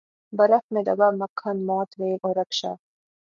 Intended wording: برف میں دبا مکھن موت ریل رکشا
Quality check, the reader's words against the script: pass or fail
fail